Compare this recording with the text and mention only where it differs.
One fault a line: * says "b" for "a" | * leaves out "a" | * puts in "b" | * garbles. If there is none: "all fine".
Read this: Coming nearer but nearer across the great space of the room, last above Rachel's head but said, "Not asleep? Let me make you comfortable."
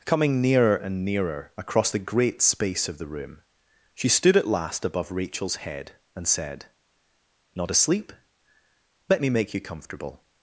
* says "and" for "but"
* puts in "she stood at"
* says "and" for "but"